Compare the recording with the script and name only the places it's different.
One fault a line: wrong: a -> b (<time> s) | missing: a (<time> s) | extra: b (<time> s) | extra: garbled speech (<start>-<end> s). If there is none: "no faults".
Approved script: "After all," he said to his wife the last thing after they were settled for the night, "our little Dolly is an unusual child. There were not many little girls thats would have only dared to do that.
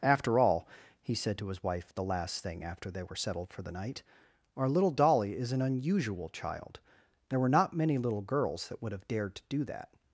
wrong: thats -> that (8.7 s)
missing: only (9.1 s)